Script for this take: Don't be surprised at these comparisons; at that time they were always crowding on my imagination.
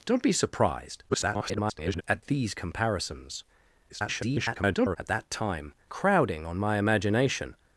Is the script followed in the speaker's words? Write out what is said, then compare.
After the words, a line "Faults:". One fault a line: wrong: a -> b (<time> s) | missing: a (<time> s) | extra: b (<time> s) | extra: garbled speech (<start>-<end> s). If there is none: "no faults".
Don't be surprised [garbled] at these comparisons; [garbled] at that time crowding on my imagination.
Faults:
extra: garbled speech (1.1-2.0 s)
extra: garbled speech (3.9-5.0 s)
missing: they were always (5.7 s)